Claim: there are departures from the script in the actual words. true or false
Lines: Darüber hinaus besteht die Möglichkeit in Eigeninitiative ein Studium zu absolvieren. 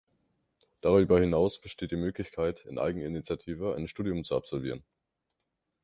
false